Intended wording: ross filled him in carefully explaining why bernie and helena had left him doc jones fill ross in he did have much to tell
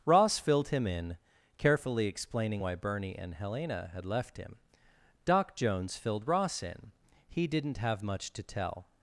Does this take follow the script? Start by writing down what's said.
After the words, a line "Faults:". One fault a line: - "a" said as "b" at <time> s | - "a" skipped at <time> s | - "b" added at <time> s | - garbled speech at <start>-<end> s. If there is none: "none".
ross filled him in carefully explaining why bernie and helena had left him doc jones filled ross in he didn't have much to tell
Faults:
- "fill" said as "filled" at 6.0 s
- "did" said as "didn't" at 7.5 s